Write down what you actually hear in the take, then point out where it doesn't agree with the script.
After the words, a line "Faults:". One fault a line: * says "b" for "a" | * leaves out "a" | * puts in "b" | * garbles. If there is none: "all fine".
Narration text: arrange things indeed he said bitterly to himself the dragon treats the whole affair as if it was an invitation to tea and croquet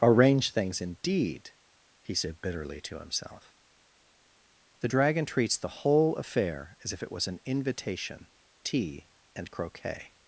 arrange things indeed he said bitterly to himself the dragon treats the whole affair as if it was an invitation tea and croquet
Faults:
* leaves out "to"